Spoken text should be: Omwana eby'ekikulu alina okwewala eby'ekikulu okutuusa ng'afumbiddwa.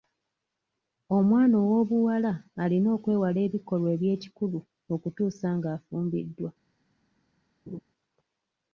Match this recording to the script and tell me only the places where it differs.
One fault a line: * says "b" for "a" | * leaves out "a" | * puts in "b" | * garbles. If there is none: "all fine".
* says "ow'obuwala" for "eby'ekikulu"
* puts in "ebikolwa"